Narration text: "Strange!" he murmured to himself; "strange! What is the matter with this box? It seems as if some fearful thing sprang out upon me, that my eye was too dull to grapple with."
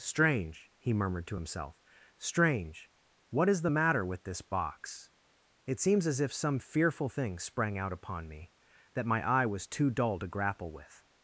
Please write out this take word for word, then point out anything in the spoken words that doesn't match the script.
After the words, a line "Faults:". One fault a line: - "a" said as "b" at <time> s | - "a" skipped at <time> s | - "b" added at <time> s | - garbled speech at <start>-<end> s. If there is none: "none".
"Strange!" he murmured to himself; "strange! What is the matter with this box? It seems as if some fearful thing sprang out upon me, that my eye was too dull to grapple with."
Faults:
none